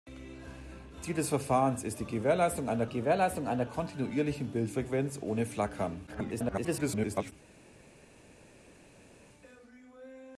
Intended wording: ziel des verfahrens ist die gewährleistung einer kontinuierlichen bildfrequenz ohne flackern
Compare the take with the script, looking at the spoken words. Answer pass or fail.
fail